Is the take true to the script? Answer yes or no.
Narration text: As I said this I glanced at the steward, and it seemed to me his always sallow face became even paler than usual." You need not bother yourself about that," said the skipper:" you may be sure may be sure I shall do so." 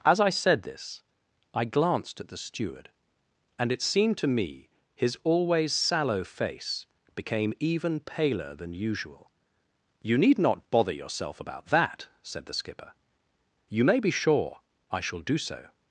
no